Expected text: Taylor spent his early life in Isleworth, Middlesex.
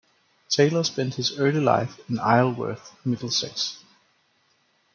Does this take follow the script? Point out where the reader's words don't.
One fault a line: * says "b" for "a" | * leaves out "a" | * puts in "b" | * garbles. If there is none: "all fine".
all fine